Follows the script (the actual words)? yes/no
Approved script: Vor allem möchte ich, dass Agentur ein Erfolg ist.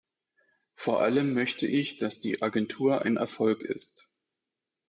no